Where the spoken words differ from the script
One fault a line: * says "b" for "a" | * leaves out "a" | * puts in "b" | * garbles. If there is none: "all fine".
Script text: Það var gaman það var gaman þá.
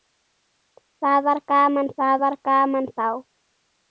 all fine